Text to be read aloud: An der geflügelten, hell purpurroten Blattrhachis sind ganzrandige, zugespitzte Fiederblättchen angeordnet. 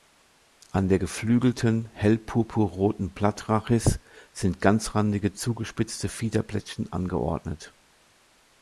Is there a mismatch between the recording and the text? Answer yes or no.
no